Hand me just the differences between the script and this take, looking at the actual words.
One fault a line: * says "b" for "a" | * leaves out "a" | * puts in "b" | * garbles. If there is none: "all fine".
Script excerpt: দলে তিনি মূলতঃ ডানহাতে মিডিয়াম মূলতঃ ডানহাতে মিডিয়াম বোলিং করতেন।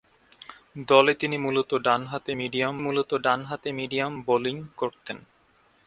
all fine